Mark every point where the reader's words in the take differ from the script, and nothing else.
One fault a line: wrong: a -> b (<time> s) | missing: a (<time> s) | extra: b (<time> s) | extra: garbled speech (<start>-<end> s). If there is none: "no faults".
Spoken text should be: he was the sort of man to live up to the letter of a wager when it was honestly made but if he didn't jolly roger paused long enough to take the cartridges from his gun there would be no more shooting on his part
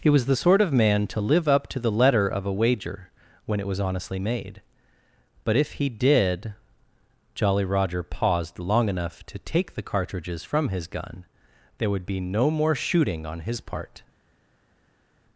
wrong: didn't -> did (5.9 s)